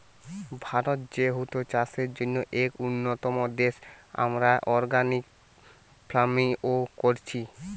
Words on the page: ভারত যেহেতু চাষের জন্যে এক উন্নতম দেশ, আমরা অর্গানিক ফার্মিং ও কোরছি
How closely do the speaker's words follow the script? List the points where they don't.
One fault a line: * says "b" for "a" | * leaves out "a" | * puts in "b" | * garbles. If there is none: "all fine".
all fine